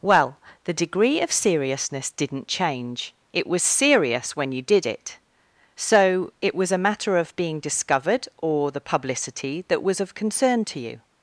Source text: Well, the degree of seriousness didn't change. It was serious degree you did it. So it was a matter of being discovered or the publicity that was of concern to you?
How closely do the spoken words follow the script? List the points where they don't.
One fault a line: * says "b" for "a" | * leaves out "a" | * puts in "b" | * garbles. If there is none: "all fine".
* says "when" for "degree"